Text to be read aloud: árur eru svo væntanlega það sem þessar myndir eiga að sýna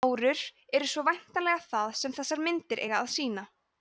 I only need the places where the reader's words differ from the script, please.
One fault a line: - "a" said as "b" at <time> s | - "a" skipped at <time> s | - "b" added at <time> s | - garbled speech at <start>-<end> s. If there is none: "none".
none